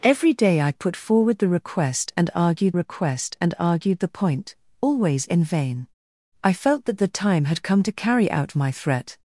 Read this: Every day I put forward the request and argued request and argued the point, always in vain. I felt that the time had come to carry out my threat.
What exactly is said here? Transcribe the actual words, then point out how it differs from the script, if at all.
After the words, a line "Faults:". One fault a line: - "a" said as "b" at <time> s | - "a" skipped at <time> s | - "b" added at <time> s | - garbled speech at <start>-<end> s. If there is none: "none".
Every day I put forward the request and argued request and argued the point, always in vain. I felt that the time had come to carry out my threat.
Faults:
none